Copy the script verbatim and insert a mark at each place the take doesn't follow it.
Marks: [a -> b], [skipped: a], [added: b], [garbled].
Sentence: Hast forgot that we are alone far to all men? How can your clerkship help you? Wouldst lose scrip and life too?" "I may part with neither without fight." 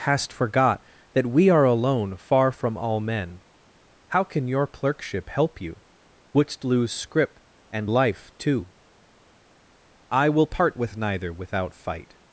Hast forgot that we are alone far [to -> from] all men? How can your clerkship help you? Wouldst lose scrip and life too?" "I [may -> will] part with neither without fight."